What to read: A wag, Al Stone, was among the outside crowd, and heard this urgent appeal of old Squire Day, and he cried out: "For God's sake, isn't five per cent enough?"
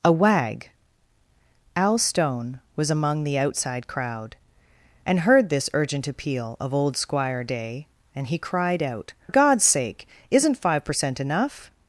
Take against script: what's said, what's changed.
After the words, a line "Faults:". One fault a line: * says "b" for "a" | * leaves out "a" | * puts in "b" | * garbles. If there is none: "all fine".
A wag, Al Stone, was among the outside crowd, and heard this urgent appeal of old Squire Day, and he cried out: "God's sake, isn't five per cent enough?"
Faults:
* leaves out "For"